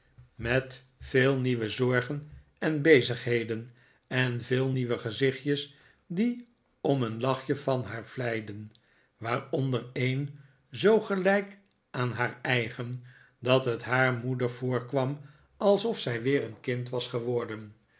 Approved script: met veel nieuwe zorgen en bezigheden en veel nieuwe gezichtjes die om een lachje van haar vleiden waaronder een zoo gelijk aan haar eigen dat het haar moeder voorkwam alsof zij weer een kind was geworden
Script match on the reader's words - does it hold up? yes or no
yes